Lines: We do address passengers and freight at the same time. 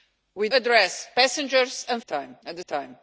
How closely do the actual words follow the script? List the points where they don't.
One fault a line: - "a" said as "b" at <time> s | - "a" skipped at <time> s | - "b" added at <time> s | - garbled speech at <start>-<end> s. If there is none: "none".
- "do" skipped at 0.5 s
- "freight" said as "time" at 2.1 s
- "same" skipped at 2.6 s